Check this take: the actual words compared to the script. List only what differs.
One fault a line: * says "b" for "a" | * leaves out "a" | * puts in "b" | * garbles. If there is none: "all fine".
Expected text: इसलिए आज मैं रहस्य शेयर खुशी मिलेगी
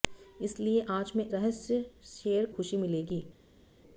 all fine